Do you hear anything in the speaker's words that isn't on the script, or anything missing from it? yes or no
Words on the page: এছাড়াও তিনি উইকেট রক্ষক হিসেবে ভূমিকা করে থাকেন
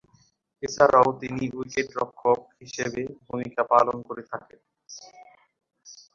yes